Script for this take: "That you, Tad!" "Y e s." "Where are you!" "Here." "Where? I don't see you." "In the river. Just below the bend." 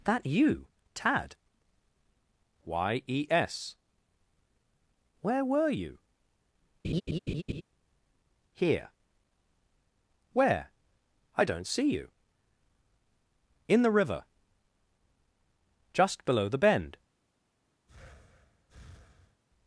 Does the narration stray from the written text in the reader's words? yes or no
yes